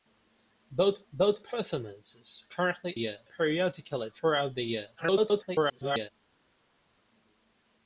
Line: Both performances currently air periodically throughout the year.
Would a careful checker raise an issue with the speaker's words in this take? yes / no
yes